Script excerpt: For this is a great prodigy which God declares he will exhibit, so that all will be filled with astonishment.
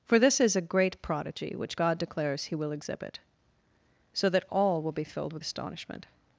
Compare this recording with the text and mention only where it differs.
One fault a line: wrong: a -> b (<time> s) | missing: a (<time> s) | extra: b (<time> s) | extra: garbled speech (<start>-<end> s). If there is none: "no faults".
no faults